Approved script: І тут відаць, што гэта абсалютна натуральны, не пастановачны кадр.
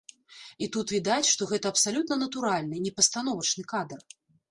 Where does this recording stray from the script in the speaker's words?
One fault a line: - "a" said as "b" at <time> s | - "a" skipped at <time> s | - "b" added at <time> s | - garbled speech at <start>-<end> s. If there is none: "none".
none